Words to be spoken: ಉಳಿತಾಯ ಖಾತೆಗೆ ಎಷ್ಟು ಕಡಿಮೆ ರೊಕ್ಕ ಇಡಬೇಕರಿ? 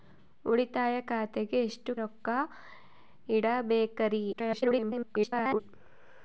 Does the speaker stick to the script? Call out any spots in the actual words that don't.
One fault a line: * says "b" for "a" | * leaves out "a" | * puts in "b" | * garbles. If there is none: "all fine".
* leaves out "ಕಡಿಮೆ"
* garbles